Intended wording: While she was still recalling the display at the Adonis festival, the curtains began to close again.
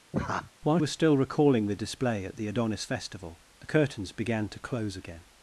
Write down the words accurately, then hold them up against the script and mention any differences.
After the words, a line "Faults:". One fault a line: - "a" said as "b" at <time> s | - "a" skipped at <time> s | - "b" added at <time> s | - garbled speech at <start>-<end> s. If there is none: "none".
While was still recalling the display at the Adonis festival, the curtains began to close again.
Faults:
- "she" skipped at 0.8 s